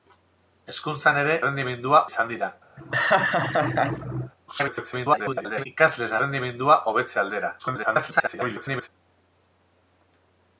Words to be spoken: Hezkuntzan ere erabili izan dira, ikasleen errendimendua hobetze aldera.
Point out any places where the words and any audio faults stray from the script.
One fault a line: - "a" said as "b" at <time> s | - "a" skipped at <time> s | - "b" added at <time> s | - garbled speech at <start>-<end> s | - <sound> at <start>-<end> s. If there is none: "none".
- "erabili" said as "errendimendua" at 1.4 s
- laugh at 2.8-4.3 s
- garbled speech at 4.5-5.7 s
- garbled speech at 7.6-8.9 s